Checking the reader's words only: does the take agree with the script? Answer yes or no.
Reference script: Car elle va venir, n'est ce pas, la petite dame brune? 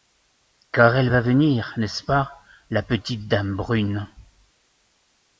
yes